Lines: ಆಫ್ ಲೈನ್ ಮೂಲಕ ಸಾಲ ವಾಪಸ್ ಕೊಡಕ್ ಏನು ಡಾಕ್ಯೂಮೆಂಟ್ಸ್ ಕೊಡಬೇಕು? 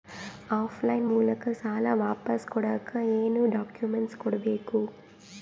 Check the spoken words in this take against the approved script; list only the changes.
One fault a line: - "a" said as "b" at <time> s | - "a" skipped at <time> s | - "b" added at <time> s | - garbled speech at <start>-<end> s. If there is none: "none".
none